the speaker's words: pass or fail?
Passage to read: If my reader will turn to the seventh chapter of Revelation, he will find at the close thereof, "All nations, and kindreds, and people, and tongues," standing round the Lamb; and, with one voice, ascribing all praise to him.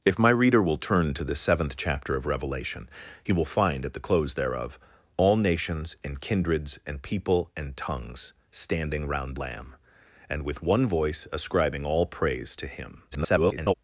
fail